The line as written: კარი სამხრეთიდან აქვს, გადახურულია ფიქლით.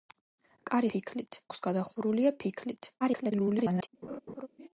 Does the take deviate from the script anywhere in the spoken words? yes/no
yes